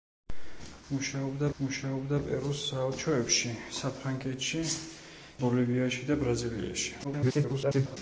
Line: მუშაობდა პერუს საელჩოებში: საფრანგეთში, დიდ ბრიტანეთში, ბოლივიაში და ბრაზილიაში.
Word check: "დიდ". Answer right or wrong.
wrong